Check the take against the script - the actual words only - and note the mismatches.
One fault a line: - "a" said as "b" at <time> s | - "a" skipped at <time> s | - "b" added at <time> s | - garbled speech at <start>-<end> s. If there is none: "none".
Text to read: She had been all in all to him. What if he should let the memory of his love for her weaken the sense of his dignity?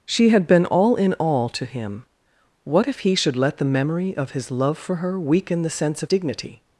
- "his" skipped at 6.1 s